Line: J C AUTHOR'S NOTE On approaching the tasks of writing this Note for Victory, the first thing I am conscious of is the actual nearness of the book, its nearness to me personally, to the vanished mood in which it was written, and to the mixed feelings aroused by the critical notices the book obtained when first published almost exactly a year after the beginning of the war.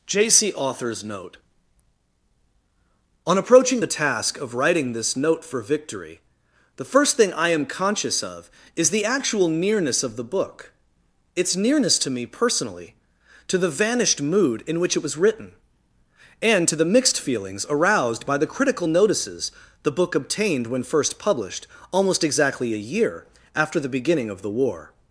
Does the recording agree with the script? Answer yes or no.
no